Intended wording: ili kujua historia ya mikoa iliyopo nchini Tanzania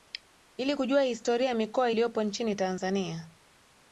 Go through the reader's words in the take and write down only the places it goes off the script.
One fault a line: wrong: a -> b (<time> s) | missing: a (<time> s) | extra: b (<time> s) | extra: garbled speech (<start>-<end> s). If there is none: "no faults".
no faults